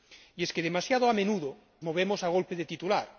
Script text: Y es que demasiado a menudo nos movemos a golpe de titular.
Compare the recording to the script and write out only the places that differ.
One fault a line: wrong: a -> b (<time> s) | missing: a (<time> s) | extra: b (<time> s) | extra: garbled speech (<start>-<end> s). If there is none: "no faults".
missing: nos (1.6 s)